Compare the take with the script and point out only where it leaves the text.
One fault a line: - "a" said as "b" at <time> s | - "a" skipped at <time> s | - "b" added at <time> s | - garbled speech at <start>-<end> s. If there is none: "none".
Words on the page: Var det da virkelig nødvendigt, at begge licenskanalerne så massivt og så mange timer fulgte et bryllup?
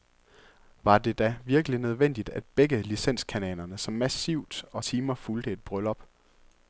- "så mange" skipped at 4.8 s